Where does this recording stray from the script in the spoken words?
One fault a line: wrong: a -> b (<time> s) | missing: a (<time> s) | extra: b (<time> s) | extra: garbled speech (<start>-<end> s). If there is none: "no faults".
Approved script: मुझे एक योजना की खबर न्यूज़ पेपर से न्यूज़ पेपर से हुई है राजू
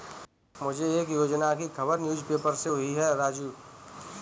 missing: न्यूज़ पेपर से (2.7 s)